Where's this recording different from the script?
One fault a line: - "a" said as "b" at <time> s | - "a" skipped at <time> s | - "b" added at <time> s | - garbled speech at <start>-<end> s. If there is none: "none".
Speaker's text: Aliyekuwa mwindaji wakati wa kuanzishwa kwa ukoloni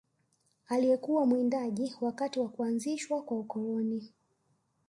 none